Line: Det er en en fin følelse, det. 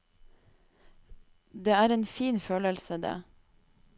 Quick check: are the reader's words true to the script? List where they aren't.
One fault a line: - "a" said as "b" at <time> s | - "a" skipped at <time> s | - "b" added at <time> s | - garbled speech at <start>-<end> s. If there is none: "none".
- "en" skipped at 2.0 s